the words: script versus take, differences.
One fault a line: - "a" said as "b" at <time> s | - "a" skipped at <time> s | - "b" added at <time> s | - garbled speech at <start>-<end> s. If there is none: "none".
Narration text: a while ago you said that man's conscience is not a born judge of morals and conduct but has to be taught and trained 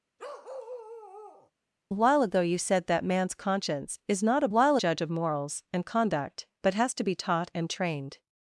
- "born" said as "while" at 4.5 s